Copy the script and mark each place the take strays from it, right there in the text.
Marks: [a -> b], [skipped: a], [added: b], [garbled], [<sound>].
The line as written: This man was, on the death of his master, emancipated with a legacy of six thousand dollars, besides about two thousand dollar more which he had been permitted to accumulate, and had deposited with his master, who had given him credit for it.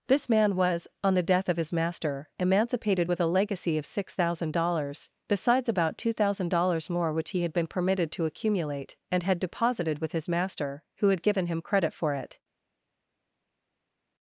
This man was, on the death of his master, emancipated with a legacy of six thousand dollars, besides about two thousand [dollar -> dollars] more which he had been permitted to accumulate, and had deposited with his master, who had given him credit for it.